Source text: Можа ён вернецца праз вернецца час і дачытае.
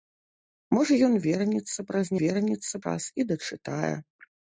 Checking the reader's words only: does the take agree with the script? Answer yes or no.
yes